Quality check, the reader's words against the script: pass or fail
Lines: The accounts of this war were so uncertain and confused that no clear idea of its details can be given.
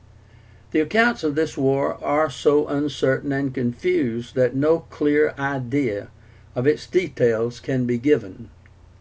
fail